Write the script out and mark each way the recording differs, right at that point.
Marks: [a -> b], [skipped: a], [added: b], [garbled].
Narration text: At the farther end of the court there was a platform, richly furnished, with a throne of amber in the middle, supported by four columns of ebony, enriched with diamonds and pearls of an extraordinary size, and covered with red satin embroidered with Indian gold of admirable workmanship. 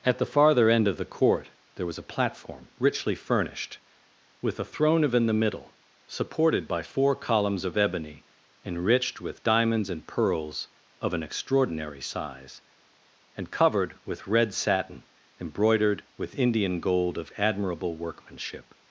At the farther end of the court there was a platform, richly furnished, with a throne of [skipped: amber] in the middle, supported by four columns of ebony, enriched with diamonds and pearls of an extraordinary size, and covered with red satin embroidered with Indian gold of admirable workmanship.